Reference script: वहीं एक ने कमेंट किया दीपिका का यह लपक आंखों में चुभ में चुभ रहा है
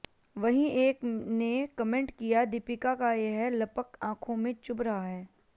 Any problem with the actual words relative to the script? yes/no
yes